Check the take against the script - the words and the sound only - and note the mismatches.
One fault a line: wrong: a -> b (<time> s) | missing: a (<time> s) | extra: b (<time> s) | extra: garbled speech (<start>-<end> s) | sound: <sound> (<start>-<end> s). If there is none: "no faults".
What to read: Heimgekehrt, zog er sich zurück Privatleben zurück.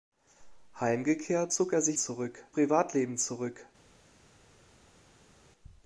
no faults